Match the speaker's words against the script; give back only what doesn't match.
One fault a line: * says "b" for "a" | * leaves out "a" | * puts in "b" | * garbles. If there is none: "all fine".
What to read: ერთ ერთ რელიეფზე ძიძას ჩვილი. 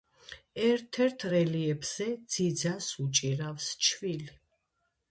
* puts in "უჭირავს"